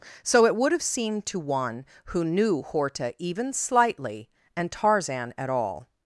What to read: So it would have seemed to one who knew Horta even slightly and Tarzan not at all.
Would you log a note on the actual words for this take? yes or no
yes